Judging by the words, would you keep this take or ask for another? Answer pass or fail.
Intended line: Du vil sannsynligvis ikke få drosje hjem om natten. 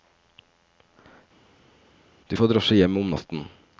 fail